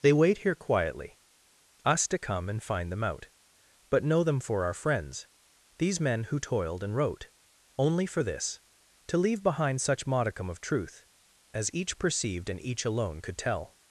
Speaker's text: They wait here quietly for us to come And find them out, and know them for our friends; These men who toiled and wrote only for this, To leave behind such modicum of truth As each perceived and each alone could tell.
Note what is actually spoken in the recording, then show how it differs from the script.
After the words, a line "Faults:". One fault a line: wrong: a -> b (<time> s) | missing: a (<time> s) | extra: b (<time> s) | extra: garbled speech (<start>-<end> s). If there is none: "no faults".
They wait here quietly us to come And find them out, but know them for our friends; These men who toiled and wrote only for this, To leave behind such modicum of truth As each perceived and each alone could tell.
Faults:
missing: for (1.2 s)
wrong: and -> but (3.9 s)